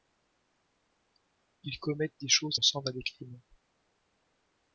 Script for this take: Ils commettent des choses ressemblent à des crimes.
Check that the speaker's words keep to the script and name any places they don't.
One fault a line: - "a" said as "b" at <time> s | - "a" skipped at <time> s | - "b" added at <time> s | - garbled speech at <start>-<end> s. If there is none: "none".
none